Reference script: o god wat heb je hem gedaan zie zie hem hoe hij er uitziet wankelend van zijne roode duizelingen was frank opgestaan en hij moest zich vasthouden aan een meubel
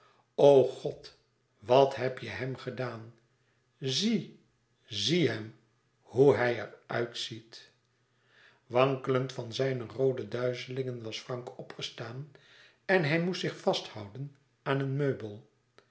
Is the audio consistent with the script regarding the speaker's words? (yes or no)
yes